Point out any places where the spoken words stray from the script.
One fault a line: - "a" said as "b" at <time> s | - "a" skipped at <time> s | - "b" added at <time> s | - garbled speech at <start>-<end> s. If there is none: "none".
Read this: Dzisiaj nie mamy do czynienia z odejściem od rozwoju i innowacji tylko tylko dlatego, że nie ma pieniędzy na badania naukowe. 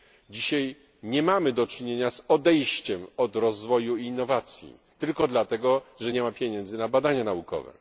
- "tylko" skipped at 5.3 s